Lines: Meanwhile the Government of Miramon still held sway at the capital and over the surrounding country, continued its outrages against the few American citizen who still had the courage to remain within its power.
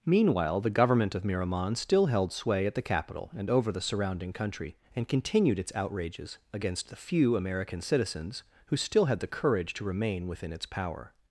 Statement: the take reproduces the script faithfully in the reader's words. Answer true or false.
false